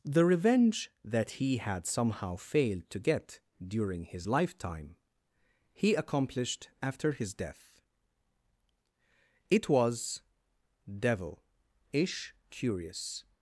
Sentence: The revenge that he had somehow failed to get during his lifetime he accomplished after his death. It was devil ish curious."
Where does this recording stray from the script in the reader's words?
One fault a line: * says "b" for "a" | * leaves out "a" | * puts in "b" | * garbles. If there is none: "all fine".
all fine